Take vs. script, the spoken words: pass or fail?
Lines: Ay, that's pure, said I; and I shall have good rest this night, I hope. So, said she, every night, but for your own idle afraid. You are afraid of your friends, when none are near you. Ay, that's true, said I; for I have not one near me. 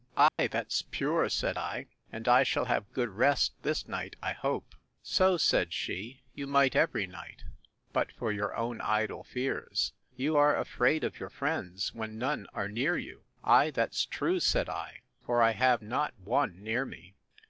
fail